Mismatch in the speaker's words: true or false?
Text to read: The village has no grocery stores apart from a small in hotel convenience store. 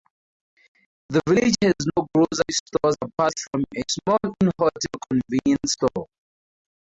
false